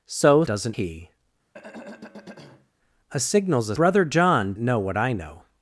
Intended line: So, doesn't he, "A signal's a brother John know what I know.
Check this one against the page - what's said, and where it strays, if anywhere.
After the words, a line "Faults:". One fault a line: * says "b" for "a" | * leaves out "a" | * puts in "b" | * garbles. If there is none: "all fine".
So, doesn't he, "A signal's a brother John know what I know.
Faults:
all fine